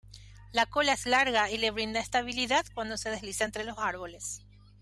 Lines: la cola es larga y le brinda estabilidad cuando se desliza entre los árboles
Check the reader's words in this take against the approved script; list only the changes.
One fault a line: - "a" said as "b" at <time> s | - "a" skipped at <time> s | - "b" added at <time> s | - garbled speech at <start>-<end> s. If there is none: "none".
none